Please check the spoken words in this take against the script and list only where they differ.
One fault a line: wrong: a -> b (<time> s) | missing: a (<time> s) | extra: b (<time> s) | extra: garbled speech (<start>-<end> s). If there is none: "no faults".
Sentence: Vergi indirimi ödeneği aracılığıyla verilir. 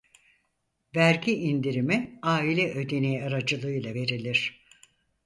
extra: aile (2.2 s)